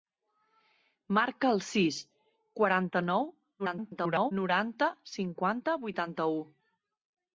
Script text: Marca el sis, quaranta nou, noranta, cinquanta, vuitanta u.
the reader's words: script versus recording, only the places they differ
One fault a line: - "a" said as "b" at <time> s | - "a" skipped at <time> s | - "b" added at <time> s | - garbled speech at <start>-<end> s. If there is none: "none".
- garbled speech at 3.6-4.3 s